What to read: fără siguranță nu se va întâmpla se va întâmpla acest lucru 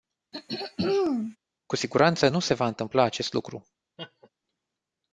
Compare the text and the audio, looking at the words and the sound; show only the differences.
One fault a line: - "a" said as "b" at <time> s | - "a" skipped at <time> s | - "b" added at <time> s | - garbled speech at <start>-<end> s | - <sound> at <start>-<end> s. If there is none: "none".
- throat clearing at 0.3-1.4 s
- "fără" said as "cu" at 1.7 s
- "se va întâmpla" skipped at 3.0 s
- laugh at 4.0-4.3 s